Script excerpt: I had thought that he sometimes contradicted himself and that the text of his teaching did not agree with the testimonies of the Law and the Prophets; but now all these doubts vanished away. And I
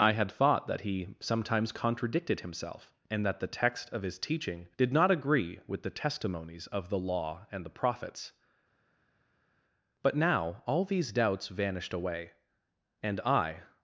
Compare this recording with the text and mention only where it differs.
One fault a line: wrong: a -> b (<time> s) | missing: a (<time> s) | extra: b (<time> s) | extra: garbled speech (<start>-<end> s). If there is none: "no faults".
no faults